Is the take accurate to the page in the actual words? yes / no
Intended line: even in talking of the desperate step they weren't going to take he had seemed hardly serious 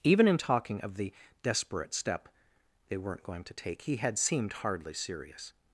yes